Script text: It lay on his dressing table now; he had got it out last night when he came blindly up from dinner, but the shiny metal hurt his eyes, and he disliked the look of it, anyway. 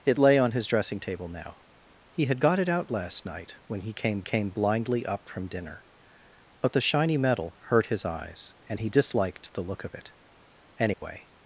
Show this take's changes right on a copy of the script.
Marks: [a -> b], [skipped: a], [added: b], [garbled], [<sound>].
It lay on his dressing table now; he had got it out last night when he came [added: came] blindly up from dinner, but the shiny metal hurt his eyes, and he disliked the look of it, anyway. [dropout]